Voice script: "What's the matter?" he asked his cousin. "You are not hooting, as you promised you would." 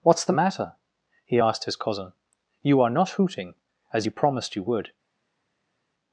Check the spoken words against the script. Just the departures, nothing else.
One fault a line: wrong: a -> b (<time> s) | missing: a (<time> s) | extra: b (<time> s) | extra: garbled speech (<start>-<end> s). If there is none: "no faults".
no faults